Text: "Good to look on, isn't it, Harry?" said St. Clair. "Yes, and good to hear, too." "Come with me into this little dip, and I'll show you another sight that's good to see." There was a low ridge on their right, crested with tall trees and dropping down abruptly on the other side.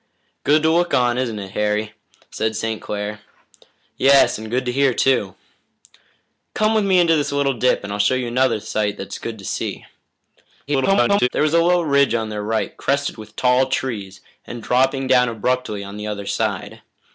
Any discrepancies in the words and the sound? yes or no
yes